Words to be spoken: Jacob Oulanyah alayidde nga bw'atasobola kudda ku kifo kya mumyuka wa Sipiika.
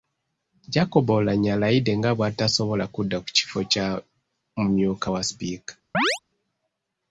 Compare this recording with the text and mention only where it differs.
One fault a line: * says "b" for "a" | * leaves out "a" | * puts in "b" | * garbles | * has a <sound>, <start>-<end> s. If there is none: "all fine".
* has a chirp, 5.9-6.2 s